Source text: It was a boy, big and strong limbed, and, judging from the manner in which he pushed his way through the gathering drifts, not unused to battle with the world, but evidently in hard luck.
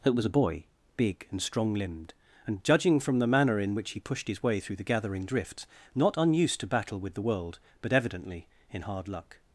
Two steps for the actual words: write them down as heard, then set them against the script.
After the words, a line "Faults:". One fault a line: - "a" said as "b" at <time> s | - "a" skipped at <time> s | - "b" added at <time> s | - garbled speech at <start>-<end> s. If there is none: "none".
It was a boy, big and strong limbed, and, judging from the manner in which he pushed his way through the gathering drifts, not unused to battle with the world, but evidently in hard luck.
Faults:
none